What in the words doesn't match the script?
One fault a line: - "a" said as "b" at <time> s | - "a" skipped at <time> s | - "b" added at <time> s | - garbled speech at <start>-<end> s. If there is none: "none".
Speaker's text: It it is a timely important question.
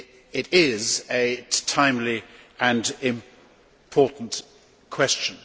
- "it" skipped at 0.5 s
- "and" added at 2.6 s